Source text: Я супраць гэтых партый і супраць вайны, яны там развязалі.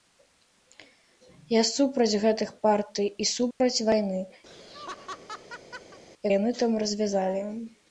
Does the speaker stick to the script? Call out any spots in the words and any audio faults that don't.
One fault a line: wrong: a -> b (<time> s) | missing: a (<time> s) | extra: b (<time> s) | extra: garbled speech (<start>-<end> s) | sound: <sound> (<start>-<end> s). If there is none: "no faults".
sound: dropout (3.5-3.6 s)
sound: laugh (4.5-6.0 s)